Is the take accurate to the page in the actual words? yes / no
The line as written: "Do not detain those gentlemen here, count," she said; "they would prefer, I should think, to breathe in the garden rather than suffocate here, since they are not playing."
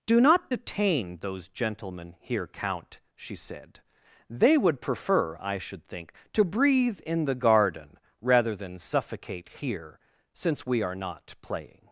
no